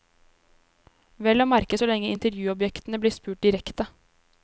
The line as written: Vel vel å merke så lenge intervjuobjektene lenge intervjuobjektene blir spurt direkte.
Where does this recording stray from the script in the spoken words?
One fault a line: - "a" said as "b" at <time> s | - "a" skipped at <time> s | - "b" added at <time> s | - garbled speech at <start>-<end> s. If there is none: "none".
- "vel" skipped at 1.4 s
- "lenge intervjuobjektene" skipped at 3.0 s